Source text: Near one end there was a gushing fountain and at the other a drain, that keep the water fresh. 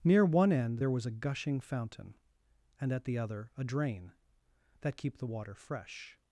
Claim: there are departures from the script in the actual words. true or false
false